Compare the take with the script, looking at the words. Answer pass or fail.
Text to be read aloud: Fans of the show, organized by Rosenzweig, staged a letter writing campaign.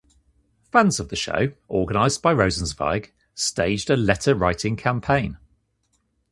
pass